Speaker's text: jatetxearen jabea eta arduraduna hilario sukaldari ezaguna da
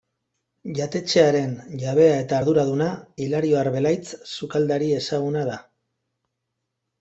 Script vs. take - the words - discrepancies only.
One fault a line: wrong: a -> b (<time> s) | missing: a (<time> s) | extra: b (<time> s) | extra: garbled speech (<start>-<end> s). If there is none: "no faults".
extra: arbelaitz (3.7 s)